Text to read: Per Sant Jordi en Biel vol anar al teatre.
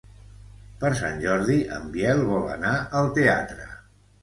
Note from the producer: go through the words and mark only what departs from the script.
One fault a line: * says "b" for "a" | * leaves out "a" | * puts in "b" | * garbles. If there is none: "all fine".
all fine